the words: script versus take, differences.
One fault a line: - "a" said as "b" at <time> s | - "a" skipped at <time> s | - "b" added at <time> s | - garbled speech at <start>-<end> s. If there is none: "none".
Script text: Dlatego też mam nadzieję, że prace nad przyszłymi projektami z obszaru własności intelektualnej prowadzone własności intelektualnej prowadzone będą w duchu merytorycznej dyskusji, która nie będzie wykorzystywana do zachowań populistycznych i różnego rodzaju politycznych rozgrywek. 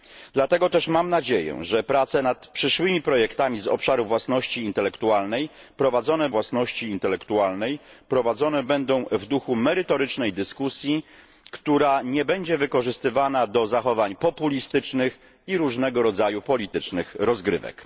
none